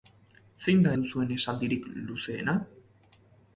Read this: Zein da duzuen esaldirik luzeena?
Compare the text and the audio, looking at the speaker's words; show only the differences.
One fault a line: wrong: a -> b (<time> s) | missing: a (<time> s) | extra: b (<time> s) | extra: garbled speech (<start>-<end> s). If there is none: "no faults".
no faults